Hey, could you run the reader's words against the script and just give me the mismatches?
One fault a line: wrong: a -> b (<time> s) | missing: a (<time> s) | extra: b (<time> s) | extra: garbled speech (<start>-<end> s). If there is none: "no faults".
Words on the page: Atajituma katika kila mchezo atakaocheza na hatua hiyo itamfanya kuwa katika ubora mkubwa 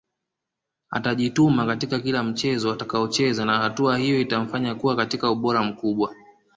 no faults